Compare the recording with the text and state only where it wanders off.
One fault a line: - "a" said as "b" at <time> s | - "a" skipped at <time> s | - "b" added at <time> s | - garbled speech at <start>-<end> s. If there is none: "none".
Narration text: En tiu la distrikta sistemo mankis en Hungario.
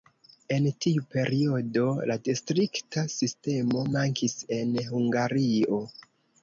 - "periodo" added at 1.1 s